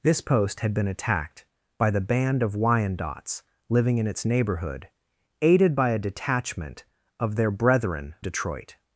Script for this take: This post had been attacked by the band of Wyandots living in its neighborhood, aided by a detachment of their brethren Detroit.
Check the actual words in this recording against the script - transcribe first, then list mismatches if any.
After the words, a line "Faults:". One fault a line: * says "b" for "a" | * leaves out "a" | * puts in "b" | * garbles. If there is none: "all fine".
This post had been attacked by the band of Wyandots living in its neighborhood, aided by a detachment of their brethren Detroit.
Faults:
all fine